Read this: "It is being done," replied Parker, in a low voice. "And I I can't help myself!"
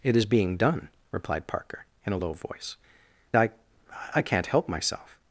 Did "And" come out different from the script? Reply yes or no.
yes